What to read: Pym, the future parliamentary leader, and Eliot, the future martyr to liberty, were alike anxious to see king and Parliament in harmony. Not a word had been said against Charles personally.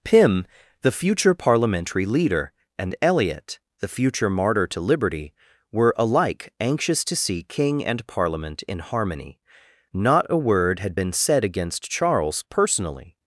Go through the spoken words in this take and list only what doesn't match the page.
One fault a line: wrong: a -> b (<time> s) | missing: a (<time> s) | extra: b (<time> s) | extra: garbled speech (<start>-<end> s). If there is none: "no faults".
no faults